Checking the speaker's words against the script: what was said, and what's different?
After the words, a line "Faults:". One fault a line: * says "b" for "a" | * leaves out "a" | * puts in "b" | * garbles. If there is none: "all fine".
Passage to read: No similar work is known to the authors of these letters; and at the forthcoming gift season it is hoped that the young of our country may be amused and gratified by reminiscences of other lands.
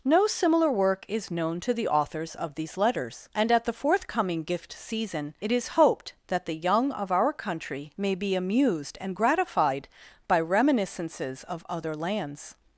No similar work is known to the authors of these letters; and at the forthcoming gift season it is hoped that the young of our country may be amused and gratified by reminiscences of other lands.
Faults:
all fine